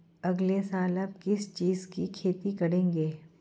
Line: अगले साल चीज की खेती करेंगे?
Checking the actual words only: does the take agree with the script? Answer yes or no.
no